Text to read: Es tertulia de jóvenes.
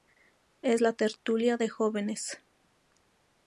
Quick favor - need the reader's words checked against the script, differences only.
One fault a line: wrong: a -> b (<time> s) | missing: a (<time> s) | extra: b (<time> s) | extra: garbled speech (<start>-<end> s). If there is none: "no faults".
extra: la (0.8 s)